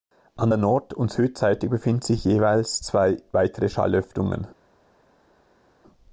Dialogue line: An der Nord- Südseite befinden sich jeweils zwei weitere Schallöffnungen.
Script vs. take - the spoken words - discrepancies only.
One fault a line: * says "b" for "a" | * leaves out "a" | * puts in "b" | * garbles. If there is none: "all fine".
* puts in "und"